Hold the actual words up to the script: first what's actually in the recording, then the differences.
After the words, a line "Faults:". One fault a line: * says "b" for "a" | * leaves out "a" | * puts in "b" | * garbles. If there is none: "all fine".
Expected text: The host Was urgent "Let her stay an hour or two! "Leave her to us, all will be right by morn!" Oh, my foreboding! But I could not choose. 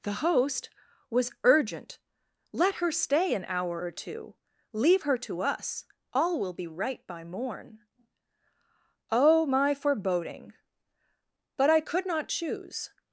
The host Was urgent "Let her stay an hour or two! "Leave her to us, all will be right by morn!" Oh, my foreboding! But I could not choose.
Faults:
all fine